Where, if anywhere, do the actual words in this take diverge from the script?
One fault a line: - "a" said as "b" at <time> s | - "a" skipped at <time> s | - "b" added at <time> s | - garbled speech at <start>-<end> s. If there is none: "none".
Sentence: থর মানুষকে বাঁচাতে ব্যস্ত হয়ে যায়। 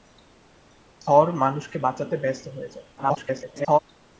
- garbled speech at 3.0-3.8 s